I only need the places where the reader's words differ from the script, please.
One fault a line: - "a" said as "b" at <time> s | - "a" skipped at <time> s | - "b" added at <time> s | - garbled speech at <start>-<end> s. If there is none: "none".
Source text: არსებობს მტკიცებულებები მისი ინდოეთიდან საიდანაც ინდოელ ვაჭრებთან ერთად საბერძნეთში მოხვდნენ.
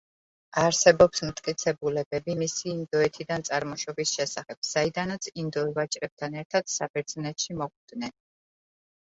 - "წარმოშობის შესახებ" added at 3.5 s